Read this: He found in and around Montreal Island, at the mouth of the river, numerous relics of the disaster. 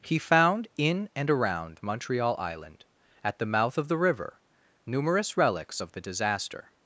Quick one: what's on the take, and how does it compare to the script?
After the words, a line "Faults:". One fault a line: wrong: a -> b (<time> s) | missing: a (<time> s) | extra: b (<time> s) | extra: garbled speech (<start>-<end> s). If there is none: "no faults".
He found in and around Montreal Island, at the mouth of the river, numerous relics of the disaster.
Faults:
no faults